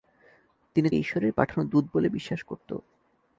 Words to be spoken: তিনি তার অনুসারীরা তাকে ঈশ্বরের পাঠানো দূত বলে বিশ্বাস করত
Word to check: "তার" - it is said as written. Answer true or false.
false